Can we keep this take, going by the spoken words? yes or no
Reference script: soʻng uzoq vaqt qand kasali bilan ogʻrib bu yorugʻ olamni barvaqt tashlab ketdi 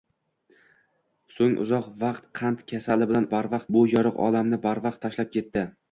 no